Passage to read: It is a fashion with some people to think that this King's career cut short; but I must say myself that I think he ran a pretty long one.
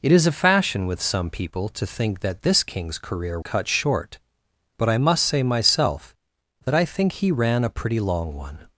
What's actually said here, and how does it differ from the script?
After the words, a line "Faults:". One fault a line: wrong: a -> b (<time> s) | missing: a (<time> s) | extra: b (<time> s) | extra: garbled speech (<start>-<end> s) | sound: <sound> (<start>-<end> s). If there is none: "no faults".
It is a fashion with some people to think that this King's career cut short; but I must say myself that I think he ran a pretty long one.
Faults:
no faults